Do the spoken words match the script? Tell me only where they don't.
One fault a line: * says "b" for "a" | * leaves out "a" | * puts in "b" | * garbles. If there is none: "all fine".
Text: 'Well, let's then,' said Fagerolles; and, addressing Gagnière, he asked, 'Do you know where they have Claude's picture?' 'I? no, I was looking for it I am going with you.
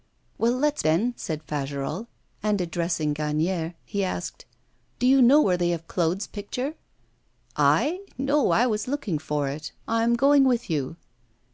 all fine